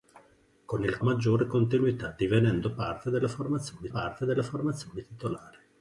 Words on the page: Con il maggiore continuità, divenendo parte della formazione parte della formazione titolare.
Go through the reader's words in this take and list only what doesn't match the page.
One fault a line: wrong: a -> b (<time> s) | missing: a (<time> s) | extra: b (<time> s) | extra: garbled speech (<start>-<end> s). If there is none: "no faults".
no faults